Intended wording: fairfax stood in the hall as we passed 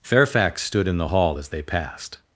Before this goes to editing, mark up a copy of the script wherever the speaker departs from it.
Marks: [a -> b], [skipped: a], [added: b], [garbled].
fairfax stood in the hall as [we -> they] passed